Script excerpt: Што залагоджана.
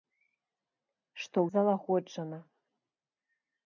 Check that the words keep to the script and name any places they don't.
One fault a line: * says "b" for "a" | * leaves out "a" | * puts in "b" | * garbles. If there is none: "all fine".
all fine